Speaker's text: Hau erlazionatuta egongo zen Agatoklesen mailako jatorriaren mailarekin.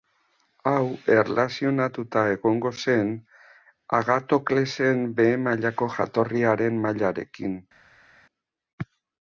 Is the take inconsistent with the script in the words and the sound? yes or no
yes